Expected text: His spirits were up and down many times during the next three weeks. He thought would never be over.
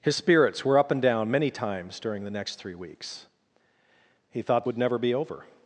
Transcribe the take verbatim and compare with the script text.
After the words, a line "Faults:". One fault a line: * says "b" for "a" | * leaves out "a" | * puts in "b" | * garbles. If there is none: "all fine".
His spirits were up and down many times during the next three weeks. He thought would never be over.
Faults:
all fine